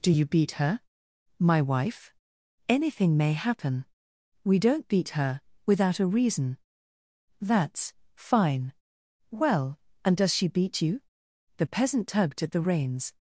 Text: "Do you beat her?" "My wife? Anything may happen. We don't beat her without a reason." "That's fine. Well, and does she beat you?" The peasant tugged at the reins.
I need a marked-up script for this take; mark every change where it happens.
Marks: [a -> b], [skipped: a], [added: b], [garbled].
"Do you beat her?" "My wife? Anything may happen. We don't beat her without a reason." "That's fine. Well, and does she beat you?" The peasant tugged at the reins.